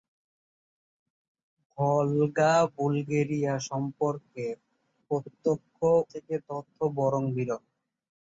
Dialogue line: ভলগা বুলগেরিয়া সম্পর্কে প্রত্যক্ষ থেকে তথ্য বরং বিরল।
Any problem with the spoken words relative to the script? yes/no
no